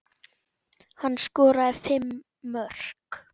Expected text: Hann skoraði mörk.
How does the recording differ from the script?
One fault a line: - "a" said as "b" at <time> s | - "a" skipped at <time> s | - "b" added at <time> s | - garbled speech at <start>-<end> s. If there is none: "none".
- "fimm" added at 1.9 s